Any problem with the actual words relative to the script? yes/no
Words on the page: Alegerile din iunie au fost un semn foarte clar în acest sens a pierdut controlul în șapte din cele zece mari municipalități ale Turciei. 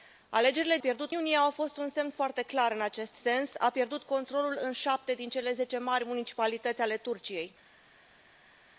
yes